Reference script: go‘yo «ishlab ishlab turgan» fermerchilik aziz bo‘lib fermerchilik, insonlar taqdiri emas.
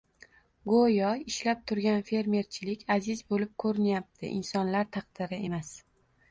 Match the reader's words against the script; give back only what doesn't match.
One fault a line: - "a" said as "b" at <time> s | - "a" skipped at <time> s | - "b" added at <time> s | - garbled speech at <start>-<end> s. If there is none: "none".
- "ishlab" skipped at 1.6 s
- "fermerchilik" said as "ko‘rinyapti" at 3.7 s